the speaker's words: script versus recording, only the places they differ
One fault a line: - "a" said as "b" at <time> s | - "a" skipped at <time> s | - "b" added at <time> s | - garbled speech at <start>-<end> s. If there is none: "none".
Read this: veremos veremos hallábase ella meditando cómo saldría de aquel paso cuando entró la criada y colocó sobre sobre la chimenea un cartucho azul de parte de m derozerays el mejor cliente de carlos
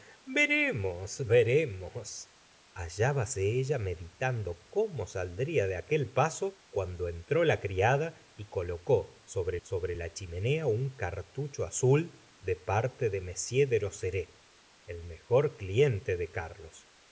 none